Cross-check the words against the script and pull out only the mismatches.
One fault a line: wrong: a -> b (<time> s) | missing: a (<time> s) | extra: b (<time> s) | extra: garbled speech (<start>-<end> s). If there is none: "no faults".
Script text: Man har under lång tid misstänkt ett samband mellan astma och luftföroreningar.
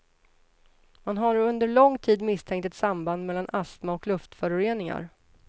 no faults